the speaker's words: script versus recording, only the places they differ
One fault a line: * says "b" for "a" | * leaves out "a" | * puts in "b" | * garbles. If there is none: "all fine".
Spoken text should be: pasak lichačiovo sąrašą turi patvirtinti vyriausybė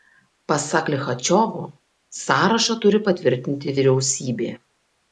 all fine